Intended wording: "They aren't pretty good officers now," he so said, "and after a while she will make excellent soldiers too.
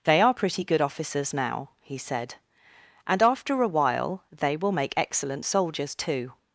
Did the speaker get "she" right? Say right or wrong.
wrong